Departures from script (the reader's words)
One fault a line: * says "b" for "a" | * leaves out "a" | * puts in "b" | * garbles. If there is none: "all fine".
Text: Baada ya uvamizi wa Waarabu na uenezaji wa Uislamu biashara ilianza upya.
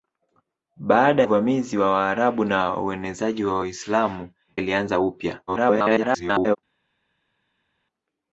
* leaves out "ya"
* leaves out "biashara"
* garbles